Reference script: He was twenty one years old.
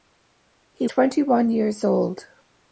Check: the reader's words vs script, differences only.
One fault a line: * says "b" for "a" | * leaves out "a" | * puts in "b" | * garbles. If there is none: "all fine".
* leaves out "was"